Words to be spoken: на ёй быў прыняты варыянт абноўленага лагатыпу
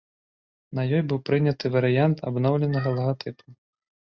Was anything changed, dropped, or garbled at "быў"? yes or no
no